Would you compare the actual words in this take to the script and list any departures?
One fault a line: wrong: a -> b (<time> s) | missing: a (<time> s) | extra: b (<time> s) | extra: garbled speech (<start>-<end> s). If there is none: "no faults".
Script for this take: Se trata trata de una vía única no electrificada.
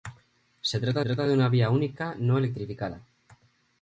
no faults